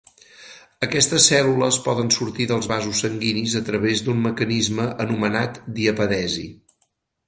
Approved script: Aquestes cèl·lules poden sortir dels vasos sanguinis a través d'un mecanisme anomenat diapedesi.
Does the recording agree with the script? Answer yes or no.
yes